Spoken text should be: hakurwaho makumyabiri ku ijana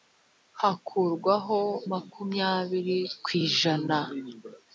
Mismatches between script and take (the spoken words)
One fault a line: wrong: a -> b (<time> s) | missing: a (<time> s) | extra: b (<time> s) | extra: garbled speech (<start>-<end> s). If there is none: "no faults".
no faults